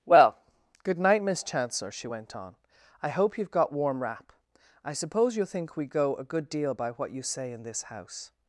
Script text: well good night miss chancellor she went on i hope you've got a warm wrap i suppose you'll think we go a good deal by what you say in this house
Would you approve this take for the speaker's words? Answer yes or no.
no